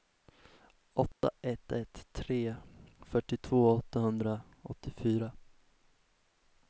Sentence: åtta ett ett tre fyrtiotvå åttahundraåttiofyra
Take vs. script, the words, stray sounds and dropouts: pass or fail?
fail